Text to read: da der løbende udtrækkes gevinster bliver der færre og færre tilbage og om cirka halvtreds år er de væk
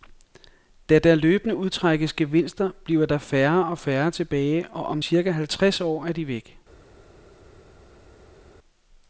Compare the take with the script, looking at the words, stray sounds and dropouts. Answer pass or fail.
pass